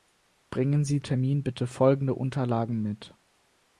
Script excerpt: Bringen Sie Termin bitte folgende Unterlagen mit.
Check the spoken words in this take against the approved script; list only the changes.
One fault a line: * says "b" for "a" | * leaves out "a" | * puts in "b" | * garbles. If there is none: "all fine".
all fine